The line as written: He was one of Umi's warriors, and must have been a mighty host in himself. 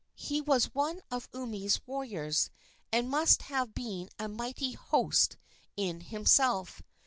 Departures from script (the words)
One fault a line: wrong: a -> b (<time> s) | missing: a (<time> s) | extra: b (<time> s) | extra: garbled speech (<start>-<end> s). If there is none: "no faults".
no faults